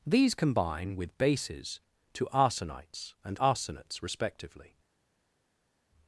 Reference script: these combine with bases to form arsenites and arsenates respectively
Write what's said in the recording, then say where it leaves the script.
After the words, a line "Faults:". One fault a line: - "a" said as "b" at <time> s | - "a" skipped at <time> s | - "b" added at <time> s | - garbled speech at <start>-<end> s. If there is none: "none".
these combine with bases to arsenites and arsenates respectively
Faults:
- "form" skipped at 2.2 s